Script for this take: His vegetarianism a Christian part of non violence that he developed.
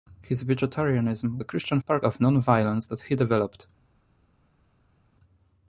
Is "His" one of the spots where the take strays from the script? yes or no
no